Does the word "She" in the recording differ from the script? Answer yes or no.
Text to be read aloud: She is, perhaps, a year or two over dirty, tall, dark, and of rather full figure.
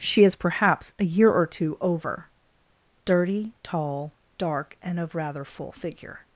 no